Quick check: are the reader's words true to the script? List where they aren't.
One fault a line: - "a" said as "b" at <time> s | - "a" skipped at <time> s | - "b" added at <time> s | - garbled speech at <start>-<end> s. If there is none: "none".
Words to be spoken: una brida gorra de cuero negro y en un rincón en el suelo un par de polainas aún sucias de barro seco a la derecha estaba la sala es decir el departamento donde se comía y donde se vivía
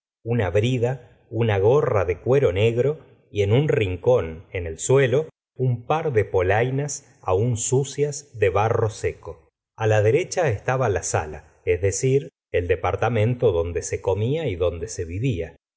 - "una" added at 1.3 s